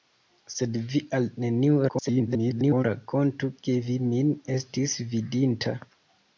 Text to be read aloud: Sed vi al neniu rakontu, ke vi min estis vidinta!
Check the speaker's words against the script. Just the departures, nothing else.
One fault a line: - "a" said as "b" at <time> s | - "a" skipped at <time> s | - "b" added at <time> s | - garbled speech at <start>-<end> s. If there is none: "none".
- garbled speech at 1.9-2.8 s